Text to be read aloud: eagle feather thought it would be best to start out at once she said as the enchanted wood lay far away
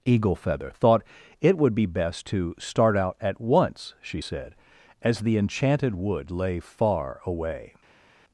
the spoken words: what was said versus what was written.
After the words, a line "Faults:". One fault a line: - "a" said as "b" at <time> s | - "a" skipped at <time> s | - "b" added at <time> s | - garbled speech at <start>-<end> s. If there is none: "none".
eagle feather thought it would be best to start out at once she said as the enchanted wood lay far away
Faults:
none